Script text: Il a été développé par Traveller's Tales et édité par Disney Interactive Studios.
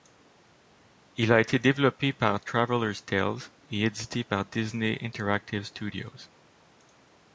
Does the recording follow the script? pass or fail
pass